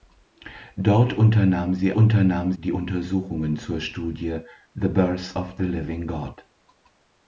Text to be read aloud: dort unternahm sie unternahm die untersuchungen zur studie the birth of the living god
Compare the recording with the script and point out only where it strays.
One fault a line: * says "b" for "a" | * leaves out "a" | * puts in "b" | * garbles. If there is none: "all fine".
all fine